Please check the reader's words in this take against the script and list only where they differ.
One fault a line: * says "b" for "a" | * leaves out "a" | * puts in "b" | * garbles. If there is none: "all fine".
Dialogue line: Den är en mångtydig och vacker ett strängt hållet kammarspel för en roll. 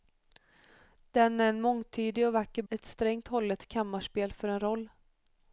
all fine